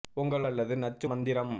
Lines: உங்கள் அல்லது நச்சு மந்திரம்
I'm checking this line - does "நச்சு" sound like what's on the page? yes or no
yes